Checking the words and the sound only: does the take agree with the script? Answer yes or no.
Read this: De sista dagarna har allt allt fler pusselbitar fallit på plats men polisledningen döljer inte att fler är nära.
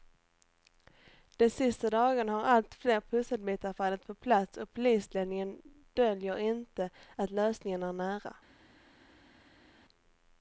no